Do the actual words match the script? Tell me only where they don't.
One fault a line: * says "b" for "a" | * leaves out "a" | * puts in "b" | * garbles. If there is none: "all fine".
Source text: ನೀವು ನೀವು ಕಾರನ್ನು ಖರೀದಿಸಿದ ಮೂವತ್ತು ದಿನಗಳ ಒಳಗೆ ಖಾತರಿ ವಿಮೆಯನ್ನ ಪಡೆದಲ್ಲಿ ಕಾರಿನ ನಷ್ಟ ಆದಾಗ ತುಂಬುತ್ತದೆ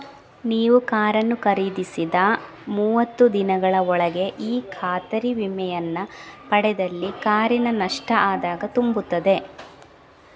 * leaves out "ನೀವು"
* puts in "ಈ"